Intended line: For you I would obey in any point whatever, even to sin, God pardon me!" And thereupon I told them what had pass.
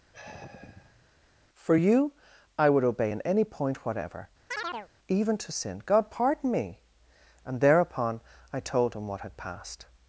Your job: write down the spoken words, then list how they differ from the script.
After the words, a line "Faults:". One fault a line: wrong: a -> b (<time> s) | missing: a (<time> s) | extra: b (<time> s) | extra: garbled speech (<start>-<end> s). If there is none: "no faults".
For you I would obey in any point whatever, even to sin, God pardon me!" And thereupon I told him what had passed.
Faults:
wrong: them -> him (9.0 s)
wrong: pass -> passed (9.4 s)